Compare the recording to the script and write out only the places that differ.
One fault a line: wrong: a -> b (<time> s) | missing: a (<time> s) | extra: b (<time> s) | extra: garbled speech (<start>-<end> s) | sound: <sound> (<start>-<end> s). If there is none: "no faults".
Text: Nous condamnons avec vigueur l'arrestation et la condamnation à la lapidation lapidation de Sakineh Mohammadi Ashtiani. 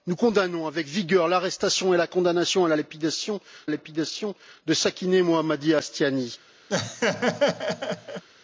sound: laugh (6.7-8.2 s)